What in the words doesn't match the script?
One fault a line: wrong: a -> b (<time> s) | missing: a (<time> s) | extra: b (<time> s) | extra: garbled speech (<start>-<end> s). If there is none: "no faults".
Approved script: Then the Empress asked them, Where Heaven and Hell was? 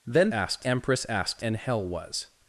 wrong: the -> asked (0.3 s)
missing: them Where Heaven (1.4 s)